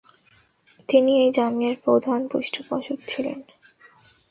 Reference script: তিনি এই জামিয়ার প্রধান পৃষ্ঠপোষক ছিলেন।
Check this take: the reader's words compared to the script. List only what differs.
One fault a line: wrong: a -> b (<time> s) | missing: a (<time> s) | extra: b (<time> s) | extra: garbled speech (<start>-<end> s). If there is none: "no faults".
no faults